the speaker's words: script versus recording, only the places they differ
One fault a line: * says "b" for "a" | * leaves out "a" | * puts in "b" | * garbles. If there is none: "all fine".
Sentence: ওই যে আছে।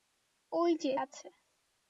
all fine